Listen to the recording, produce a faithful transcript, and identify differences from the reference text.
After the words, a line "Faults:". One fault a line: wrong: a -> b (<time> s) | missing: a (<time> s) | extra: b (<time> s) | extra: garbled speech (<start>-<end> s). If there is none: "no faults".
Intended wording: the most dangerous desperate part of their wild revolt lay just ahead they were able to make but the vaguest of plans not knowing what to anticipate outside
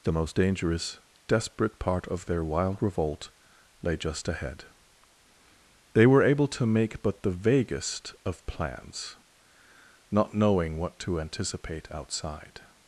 the most dangerous desperate part of their wild revolt lay just ahead they were able to make but the vaguest of plans not knowing what to anticipate outside
Faults:
no faults